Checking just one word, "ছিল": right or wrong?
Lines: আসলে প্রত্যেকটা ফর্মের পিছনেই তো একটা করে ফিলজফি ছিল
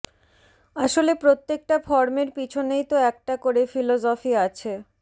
wrong